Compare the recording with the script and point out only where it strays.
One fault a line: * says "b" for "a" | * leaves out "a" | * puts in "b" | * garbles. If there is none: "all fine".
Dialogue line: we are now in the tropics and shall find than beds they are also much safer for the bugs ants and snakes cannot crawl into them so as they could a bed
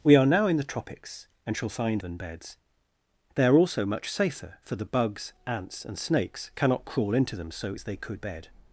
all fine